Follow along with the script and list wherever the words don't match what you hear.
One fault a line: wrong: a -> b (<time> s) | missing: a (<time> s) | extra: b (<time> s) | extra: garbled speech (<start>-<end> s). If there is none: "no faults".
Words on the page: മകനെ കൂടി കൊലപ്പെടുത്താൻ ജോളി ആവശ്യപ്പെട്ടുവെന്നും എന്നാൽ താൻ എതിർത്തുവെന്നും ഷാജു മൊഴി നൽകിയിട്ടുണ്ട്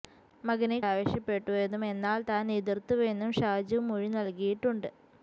missing: കൂടി കൊലപ്പെടുത്താൻ ജോളി (0.8 s)